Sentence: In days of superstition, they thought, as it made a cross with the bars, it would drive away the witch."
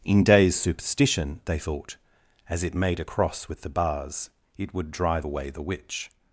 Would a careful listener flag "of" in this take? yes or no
yes